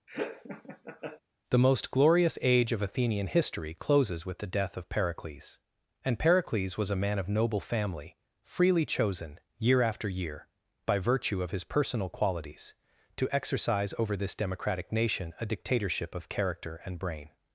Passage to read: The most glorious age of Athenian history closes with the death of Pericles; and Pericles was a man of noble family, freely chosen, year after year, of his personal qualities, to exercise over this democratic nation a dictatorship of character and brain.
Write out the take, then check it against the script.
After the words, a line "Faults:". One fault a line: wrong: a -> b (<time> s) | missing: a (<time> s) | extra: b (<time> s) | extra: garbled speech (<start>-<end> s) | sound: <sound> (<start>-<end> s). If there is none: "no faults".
The most glorious age of Athenian history closes with the death of Pericles; and Pericles was a man of noble family, freely chosen, year after year, by virtue of his personal qualities, to exercise over this democratic nation a dictatorship of character and brain.
Faults:
sound: laugh (0.1-1.2 s)
extra: by virtue (10.9 s)